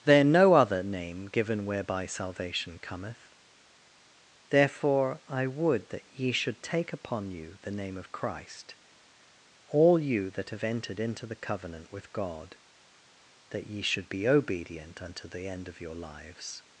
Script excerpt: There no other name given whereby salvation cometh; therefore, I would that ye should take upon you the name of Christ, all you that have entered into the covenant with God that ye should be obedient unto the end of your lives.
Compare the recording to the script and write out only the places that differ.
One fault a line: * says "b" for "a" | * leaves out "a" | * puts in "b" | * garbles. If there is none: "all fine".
all fine